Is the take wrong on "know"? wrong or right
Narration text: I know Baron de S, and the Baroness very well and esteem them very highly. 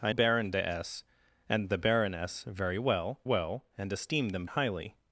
wrong